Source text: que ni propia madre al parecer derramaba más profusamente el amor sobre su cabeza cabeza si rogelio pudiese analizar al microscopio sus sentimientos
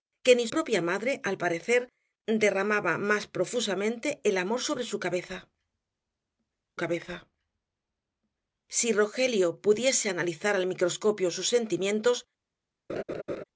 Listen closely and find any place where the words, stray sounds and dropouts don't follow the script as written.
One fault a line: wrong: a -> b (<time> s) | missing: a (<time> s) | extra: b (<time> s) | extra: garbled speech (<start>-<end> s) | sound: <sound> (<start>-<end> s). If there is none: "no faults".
sound: laugh (12.9-13.4 s)